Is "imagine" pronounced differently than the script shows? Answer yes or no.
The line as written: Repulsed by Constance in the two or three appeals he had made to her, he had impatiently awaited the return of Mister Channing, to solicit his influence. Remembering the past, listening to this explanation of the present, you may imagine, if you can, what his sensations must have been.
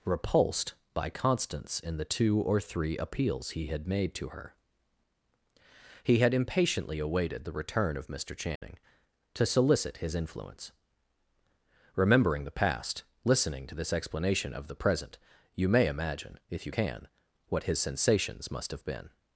no